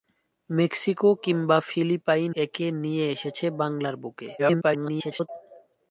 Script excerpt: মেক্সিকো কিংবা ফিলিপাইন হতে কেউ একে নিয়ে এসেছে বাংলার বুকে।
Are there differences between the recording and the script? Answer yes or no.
yes